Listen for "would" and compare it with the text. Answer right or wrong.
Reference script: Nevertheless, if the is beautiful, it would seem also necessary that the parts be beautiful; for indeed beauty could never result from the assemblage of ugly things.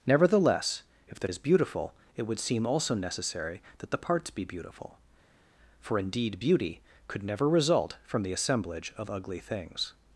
right